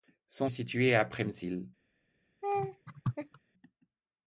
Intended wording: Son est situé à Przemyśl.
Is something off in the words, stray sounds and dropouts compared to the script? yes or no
yes